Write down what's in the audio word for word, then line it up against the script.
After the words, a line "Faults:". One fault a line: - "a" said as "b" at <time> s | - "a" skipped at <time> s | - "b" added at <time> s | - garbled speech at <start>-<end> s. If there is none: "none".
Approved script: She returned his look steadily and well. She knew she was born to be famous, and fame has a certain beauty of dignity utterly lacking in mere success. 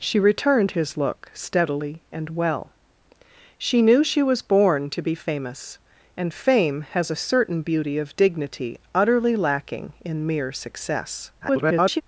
She returned his look steadily and well. She knew she was born to be famous, and fame has a certain beauty of dignity utterly lacking in mere success. [garbled]
Faults:
- garbled speech at 11.4-12.0 s